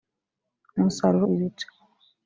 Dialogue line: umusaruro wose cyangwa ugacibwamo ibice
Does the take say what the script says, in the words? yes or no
no